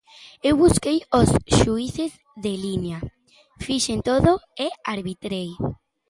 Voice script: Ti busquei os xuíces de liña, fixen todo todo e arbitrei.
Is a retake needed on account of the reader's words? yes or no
yes